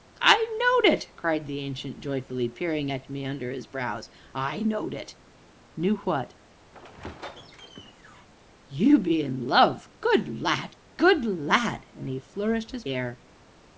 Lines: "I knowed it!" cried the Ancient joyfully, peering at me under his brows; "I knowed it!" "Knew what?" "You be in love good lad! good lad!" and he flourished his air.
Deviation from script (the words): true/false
false